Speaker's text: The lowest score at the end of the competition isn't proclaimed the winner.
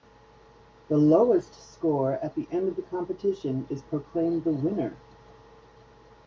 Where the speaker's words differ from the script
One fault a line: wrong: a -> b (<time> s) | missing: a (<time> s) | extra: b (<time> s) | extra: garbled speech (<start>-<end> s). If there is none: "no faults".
wrong: isn't -> is (3.7 s)